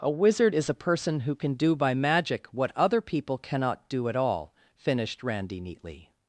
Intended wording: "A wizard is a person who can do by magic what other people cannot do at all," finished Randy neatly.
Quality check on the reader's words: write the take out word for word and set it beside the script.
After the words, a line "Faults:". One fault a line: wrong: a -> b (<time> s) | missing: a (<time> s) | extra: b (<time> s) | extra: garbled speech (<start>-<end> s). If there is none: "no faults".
"A wizard is a person who can do by magic what other people cannot do at all," finished Randy neatly.
Faults:
no faults